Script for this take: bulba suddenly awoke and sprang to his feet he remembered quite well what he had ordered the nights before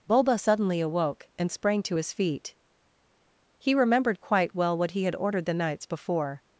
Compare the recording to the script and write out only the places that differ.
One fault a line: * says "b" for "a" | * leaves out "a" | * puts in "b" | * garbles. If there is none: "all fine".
all fine